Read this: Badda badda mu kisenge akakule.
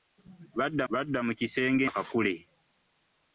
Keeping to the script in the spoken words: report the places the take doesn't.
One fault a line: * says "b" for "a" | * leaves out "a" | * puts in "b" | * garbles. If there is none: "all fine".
all fine